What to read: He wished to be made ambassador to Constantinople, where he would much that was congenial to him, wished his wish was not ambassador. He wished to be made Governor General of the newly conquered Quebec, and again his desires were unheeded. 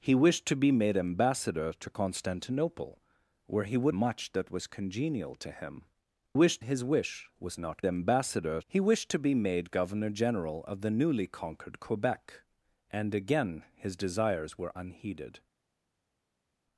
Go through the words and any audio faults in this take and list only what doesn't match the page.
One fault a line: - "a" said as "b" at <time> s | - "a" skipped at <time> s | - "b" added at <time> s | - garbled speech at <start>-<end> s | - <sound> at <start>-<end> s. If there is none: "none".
none